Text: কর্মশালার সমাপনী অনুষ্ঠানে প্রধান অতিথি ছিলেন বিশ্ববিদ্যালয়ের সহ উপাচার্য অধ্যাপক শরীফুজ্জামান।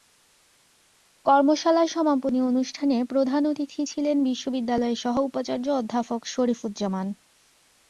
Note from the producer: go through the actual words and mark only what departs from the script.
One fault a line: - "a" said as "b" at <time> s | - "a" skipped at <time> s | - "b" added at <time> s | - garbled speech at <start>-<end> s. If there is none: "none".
none